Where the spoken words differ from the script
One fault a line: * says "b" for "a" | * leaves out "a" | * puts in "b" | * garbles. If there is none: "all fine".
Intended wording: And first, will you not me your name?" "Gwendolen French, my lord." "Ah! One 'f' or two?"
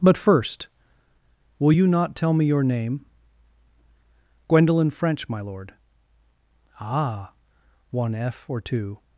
* says "But" for "And"
* puts in "tell"